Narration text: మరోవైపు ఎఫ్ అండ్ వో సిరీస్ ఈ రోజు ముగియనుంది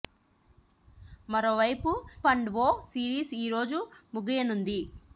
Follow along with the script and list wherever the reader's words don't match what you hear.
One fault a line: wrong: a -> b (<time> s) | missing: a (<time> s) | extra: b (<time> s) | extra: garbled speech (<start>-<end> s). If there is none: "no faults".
missing: ఎఫ్ (1.9 s)